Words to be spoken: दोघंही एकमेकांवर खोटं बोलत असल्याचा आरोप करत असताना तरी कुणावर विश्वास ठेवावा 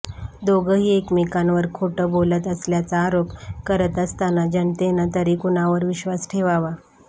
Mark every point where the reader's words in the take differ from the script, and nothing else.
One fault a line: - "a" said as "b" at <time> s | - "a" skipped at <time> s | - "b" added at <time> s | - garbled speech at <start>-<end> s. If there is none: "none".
- "जनतेनं" added at 4.5 s